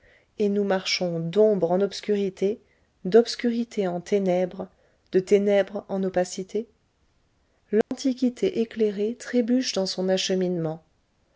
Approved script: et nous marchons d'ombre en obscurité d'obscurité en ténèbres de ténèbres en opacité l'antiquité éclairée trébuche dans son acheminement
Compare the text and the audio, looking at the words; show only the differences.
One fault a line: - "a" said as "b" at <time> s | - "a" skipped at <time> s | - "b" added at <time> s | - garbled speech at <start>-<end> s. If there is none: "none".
none